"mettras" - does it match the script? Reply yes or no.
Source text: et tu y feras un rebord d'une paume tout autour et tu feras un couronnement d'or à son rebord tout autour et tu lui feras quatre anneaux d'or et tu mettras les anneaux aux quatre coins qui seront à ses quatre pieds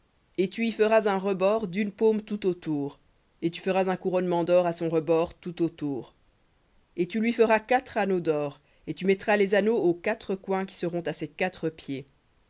yes